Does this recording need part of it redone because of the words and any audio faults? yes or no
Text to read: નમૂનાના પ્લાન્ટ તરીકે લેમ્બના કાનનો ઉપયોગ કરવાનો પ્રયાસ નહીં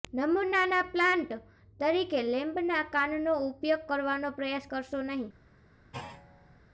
yes